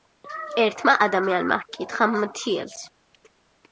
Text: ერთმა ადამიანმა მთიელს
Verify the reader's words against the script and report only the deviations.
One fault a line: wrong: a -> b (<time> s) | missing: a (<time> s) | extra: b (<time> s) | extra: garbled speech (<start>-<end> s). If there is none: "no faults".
extra: ჰკითხა (1.6 s)